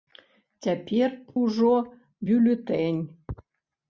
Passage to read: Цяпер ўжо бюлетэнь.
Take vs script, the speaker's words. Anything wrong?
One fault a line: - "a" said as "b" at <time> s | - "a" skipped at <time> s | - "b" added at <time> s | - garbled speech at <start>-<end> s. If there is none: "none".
none